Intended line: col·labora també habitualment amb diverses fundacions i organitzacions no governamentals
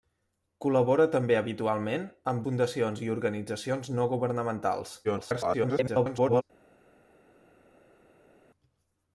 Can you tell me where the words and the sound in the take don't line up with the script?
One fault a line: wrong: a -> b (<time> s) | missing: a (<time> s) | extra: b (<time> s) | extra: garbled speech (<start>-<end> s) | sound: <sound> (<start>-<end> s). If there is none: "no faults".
missing: diverses (2.4 s)
extra: garbled speech (5.0-6.4 s)